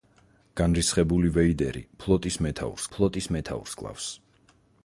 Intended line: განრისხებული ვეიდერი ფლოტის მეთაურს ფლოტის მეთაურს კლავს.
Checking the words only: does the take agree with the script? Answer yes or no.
yes